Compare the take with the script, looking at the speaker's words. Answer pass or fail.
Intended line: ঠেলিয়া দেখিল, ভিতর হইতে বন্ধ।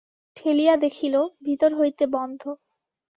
pass